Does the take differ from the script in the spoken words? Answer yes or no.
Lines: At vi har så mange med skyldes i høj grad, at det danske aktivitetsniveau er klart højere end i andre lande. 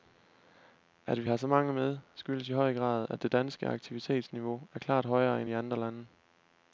no